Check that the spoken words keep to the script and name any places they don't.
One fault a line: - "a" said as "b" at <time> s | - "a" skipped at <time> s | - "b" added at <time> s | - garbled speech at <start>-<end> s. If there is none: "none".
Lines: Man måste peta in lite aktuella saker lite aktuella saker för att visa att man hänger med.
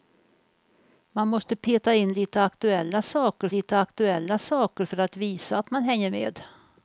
none